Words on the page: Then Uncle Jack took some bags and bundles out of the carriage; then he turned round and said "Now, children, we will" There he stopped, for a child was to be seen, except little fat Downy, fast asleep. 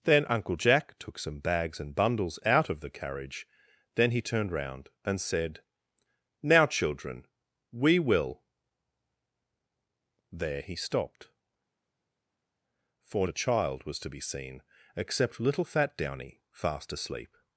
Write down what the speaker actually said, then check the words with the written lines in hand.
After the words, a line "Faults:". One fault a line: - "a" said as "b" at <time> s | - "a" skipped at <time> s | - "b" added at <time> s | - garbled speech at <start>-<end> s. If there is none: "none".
Then Uncle Jack took some bags and bundles out of the carriage; then he turned round and said "Now, children, we will" There he stopped, for a child was to be seen, except little fat Downy, fast asleep.
Faults:
none